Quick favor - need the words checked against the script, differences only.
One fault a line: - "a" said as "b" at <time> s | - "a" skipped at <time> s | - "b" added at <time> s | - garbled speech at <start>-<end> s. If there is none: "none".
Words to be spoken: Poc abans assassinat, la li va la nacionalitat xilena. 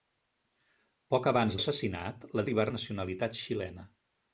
none